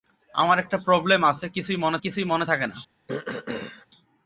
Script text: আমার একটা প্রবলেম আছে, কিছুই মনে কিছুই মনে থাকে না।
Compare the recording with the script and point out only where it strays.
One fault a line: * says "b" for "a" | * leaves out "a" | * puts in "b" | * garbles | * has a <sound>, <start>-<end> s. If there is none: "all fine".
* has a throat clearing, 3.1-3.9 s